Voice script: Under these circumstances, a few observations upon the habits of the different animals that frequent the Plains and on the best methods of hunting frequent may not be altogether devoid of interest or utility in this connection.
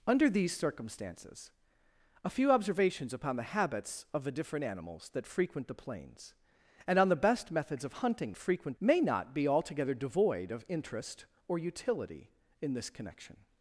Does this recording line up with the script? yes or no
yes